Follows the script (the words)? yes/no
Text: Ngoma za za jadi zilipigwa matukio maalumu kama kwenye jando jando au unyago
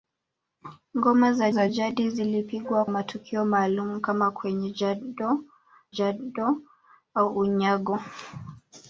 yes